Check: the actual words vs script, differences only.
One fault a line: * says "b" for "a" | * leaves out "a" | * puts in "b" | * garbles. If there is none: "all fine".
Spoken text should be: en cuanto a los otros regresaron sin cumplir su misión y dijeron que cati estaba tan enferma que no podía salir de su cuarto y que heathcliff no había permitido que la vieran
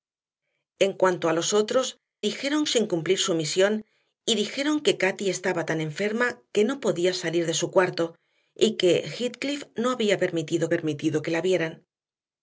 * says "dijeron" for "regresaron"
* puts in "permitido"